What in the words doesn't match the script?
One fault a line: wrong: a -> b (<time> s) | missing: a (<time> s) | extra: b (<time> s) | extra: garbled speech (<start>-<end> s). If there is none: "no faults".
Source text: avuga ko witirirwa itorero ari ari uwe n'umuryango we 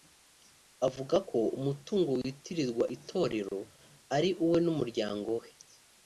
extra: umutungo (1.6 s)
missing: ari (4.3 s)